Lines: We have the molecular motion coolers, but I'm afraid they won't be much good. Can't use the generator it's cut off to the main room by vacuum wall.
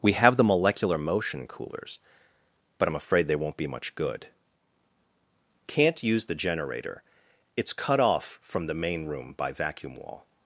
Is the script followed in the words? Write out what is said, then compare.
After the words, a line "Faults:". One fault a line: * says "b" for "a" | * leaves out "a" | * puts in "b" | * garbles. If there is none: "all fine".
We have the molecular motion coolers, but I'm afraid they won't be much good. Can't use the generator it's cut off from the main room by vacuum wall.
Faults:
* says "from" for "to"